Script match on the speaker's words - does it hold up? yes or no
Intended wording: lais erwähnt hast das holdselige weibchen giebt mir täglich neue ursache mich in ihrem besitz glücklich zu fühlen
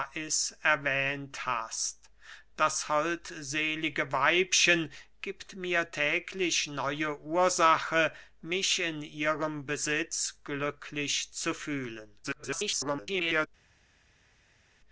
no